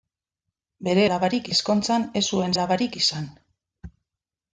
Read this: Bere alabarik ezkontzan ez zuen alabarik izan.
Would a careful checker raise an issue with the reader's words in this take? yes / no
no